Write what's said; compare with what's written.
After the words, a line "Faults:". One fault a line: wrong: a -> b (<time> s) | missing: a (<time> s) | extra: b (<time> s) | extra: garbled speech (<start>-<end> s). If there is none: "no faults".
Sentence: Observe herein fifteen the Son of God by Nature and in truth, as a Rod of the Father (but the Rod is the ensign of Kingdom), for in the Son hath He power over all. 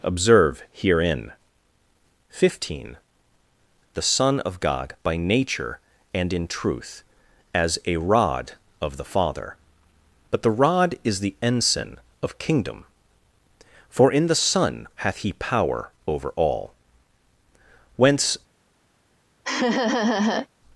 Observe herein fifteen the Son of God by Nature and in truth, as a Rod of the Father (but the Rod is the ensign of Kingdom), for in the Son hath He power over all. Whence
Faults:
extra: Whence (18.0 s)